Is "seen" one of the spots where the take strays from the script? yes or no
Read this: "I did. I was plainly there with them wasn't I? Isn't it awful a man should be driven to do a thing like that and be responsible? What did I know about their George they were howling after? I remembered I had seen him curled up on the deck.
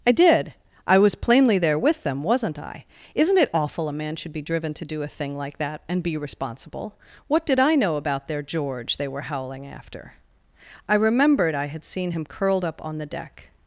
no